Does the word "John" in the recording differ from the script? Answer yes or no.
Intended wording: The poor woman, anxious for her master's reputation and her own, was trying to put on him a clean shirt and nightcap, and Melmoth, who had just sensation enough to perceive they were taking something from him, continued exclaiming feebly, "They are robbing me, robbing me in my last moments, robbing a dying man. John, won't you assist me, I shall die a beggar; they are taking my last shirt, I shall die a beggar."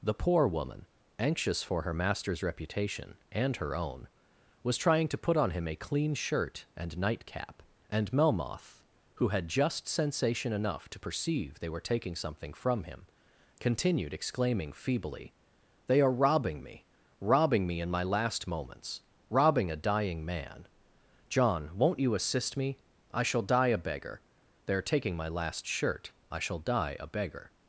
no